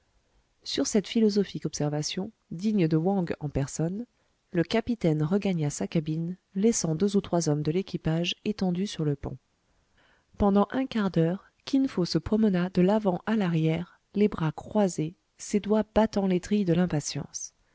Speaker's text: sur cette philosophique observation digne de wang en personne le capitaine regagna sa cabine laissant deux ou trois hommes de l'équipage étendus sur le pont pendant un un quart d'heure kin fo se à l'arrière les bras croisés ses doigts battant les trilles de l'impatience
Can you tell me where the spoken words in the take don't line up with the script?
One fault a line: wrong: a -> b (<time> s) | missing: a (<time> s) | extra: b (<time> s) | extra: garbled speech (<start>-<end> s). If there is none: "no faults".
missing: un (10.9 s)
extra: promena de l'avant (12.2 s)